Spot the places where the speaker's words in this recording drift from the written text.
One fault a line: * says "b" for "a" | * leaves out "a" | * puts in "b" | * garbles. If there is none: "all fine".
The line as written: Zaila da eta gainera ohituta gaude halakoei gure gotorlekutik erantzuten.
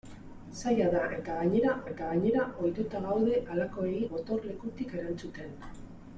* puts in "eta gainera"
* leaves out "gure"